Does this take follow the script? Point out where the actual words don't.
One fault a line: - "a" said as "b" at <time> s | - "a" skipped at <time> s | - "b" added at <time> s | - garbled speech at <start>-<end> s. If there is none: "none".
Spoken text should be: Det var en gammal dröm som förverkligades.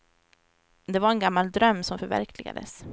none